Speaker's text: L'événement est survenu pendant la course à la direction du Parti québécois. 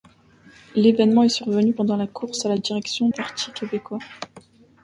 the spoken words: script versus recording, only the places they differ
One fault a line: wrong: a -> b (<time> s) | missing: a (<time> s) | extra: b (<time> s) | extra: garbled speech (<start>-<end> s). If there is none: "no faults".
missing: du (3.1 s)